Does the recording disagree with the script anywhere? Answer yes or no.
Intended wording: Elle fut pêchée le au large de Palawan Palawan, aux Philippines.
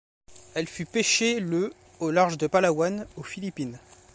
yes